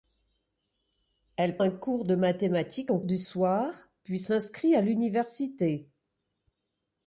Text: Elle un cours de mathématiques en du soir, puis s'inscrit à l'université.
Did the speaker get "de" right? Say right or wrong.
right